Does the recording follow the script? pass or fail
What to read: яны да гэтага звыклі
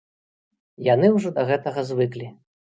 fail